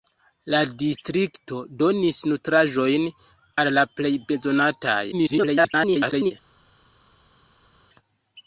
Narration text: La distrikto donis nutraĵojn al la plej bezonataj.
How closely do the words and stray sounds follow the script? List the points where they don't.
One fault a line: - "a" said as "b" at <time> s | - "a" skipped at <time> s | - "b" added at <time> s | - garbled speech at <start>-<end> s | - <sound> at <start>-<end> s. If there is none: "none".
- garbled speech at 5.1-6.3 s